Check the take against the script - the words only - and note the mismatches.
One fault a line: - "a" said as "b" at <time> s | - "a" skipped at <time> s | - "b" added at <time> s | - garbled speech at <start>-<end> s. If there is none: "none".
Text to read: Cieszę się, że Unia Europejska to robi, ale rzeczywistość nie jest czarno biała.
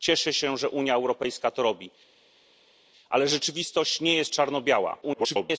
- garbled speech at 5.0-5.6 s